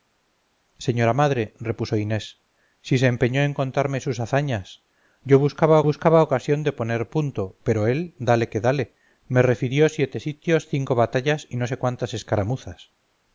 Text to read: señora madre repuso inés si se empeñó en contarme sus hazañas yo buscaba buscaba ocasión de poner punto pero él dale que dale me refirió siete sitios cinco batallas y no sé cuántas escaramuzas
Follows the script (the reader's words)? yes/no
yes